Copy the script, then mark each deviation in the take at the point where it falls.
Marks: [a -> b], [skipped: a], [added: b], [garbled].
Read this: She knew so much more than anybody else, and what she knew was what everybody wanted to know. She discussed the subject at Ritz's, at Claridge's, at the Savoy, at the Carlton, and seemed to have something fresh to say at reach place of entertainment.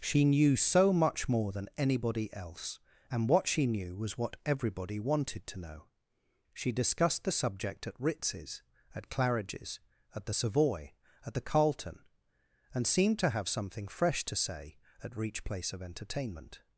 She knew so much more than anybody else, and what she knew was what everybody wanted to know. She discussed the subject at Ritz's, at Claridge's, at the Savoy, at the Carlton, and seemed to have something fresh to say at reach place of entertainment.